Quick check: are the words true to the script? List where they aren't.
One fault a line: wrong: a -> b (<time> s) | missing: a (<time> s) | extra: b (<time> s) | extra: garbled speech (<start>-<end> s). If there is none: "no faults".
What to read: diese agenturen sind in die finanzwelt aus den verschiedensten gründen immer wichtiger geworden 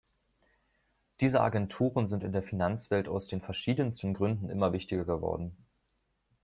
wrong: die -> der (2.3 s)